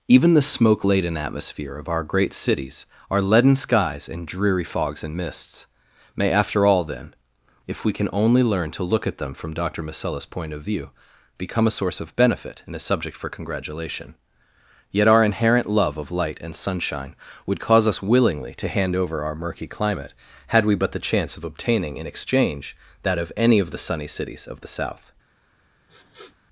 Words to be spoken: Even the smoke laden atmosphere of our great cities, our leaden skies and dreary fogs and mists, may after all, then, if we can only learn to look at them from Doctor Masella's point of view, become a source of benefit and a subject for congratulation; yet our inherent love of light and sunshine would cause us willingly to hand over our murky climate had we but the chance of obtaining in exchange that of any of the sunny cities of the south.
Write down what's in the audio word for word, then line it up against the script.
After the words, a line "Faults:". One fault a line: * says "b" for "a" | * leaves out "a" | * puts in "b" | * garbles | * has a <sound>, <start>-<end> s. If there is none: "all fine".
Even the smoke laden atmosphere of our great cities, our leaden skies and dreary fogs and mists, may after all, then, if we can only learn to look at them from Doctor Masella's point of view, become a source of benefit and a subject for congratulation; yet our inherent love of light and sunshine would cause us willingly to hand over our murky climate had we but the chance of obtaining in exchange that of any of the sunny cities of the south.
Faults:
* has a sniff, 25.9-26.4 s